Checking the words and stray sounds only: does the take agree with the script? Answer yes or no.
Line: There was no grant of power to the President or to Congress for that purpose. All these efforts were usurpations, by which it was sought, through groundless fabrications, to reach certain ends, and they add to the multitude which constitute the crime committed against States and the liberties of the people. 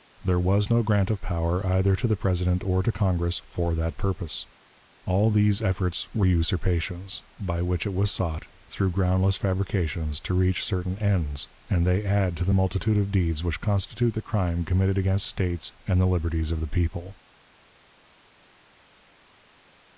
no